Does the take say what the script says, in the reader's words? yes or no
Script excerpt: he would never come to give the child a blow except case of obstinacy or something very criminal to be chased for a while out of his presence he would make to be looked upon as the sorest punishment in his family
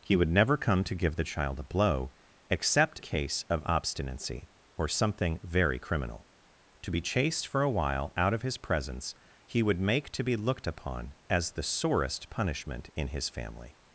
yes